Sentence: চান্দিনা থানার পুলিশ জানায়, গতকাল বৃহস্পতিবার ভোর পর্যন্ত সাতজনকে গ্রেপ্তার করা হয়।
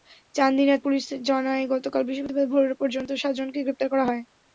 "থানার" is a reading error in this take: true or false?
true